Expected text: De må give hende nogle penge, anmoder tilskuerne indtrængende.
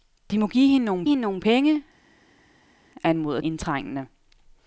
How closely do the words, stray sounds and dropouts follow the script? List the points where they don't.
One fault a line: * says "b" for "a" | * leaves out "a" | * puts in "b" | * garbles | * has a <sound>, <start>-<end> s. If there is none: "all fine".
* puts in "hende nogle"
* leaves out "tilskuerne"